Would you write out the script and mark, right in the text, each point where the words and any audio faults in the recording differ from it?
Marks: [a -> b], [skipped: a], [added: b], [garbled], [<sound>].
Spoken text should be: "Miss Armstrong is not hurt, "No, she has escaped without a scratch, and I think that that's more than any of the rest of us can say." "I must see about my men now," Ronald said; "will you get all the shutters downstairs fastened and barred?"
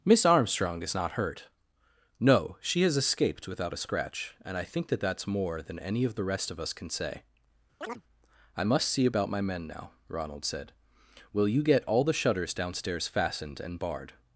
"Miss Armstrong is not hurt, "No, she has escaped without a scratch, and I think that that's more than any of the rest of us can say." [chirp] "I must see about my men now," Ronald said; "will you get all the shutters downstairs fastened and barred?"